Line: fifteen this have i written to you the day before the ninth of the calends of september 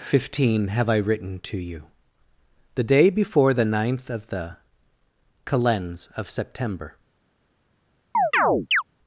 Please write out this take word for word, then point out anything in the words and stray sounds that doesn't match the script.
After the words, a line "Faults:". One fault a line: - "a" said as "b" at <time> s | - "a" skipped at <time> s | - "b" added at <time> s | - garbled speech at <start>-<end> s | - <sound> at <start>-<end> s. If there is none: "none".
fifteen have i written to you the day before the ninth of the calends of september
Faults:
- "this" skipped at 0.7 s
- chirp at 8.1-8.8 s